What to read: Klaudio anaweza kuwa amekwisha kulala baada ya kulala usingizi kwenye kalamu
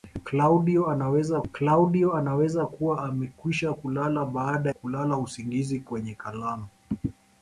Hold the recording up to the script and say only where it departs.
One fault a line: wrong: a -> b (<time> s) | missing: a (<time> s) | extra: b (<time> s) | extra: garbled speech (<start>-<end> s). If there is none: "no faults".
extra: klaudio anaweza (1.5 s)
missing: ya (4.7 s)